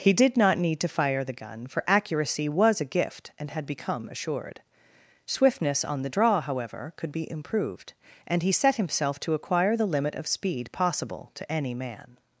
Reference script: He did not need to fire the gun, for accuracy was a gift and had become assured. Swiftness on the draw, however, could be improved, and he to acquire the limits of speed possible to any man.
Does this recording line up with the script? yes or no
no